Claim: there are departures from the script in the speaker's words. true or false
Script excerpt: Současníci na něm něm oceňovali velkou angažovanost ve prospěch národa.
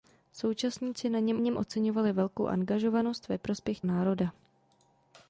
false